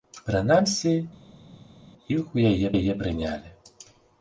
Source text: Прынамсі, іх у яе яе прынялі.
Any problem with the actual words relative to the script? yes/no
no